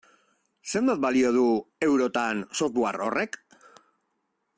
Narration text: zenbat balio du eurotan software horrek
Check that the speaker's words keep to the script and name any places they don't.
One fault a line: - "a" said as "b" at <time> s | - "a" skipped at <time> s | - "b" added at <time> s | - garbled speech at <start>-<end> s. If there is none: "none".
none